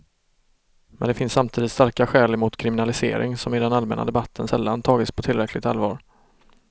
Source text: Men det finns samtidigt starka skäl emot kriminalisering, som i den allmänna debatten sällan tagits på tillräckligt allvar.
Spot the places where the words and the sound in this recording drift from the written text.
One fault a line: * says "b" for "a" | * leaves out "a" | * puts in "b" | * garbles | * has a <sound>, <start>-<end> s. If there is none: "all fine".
all fine